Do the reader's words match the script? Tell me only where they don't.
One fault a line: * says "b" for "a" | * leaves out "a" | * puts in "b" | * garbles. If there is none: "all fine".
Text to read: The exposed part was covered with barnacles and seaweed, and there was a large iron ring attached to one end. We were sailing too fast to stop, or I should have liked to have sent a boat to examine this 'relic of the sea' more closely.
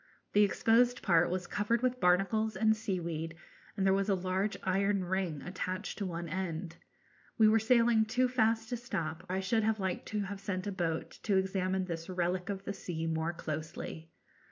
* leaves out "or"